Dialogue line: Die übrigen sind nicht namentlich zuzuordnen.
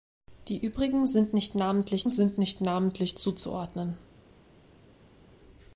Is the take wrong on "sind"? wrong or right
right